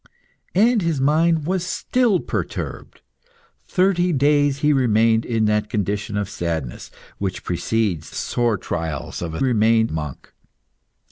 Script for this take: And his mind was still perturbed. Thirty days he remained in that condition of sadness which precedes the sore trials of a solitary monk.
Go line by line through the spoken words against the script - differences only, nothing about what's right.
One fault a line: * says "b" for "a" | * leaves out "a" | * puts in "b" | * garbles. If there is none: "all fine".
* leaves out "the"
* says "remained" for "solitary"